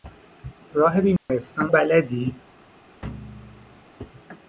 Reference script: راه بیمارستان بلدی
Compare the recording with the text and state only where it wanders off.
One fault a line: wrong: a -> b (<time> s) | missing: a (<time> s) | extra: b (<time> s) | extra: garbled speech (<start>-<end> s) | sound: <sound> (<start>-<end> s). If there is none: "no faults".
sound: dropout (1.2-1.3 s)
sound: thud (3.0-3.9 s)